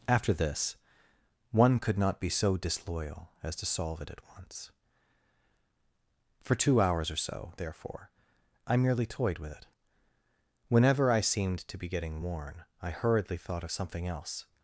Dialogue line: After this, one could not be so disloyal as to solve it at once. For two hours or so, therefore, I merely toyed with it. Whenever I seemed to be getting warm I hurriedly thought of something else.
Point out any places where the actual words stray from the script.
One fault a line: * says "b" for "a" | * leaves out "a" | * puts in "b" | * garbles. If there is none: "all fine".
* says "worn" for "warm"